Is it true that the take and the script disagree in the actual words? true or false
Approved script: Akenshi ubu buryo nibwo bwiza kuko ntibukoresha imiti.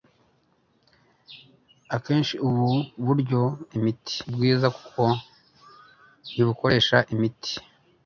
true